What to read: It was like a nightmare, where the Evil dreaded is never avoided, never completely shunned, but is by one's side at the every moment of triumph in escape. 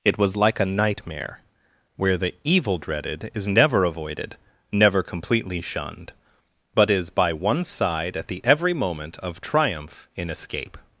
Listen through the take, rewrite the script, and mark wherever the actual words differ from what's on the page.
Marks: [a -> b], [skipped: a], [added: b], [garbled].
It was like a nightmare, where the Evil dreaded is never avoided, never completely shunned, but is by one's side at the every moment of triumph in escape.